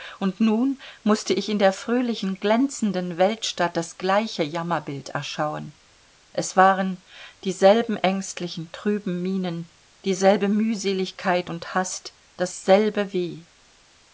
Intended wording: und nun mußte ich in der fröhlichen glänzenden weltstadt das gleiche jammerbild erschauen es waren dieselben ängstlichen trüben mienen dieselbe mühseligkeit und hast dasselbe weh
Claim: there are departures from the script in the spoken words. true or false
false